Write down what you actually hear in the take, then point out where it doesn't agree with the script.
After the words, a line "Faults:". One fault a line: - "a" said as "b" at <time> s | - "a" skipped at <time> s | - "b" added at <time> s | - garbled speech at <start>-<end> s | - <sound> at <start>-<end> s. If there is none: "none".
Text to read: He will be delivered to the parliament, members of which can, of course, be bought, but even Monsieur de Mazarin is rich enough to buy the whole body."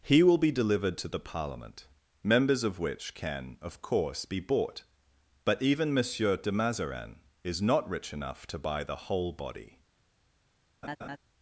He will be delivered to the parliament, members of which can, of course, be bought, but even Monsieur de Mazarin is not rich enough to buy the whole body."
Faults:
- "not" added at 7.6 s
- laugh at 10.8-11.2 s